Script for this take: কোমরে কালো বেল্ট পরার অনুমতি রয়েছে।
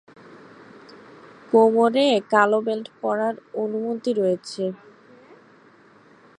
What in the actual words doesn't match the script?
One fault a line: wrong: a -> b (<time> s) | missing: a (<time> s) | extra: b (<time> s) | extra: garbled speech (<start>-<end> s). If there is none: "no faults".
no faults